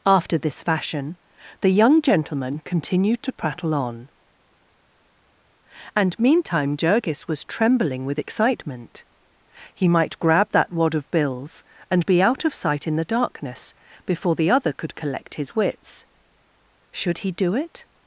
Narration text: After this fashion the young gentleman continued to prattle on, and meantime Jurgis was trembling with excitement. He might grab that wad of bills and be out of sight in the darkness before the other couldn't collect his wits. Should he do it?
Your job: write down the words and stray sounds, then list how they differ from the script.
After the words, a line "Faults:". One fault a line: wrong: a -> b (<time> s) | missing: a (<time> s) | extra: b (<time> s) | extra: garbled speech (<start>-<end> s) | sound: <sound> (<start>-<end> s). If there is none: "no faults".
After this fashion the young gentleman continued to prattle on, and meantime Jurgis was trembling with excitement. He might grab that wad of bills and be out of sight in the darkness before the other could collect his wits. Should he do it?
Faults:
wrong: couldn't -> could (14.7 s)